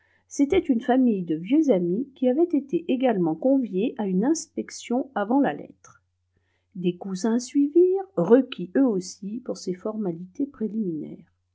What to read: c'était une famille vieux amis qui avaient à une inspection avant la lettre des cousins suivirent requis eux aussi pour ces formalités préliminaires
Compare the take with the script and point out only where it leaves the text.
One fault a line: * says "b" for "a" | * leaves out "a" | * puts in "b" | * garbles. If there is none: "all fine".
* puts in "de"
* puts in "été également conviés"